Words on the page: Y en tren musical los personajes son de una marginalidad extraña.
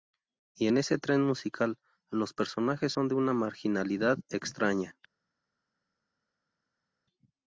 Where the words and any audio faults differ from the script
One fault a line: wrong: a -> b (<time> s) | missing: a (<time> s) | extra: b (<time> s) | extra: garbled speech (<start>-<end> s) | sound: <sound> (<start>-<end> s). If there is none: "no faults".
extra: ese (0.8 s)